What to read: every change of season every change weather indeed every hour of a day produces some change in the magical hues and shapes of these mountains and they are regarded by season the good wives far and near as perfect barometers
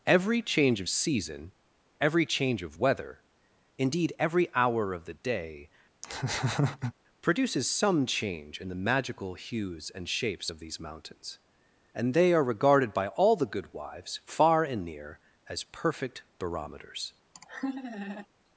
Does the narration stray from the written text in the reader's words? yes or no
yes